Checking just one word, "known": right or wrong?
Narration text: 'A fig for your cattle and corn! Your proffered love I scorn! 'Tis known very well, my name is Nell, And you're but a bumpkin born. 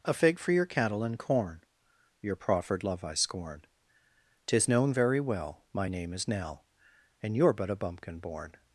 right